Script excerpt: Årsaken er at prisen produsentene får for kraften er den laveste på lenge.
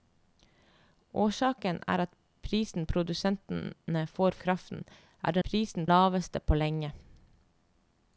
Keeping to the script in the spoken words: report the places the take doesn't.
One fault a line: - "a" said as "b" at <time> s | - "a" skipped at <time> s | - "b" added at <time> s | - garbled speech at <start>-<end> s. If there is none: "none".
- "for" skipped at 4.4 s
- "den" said as "prisen" at 5.5 s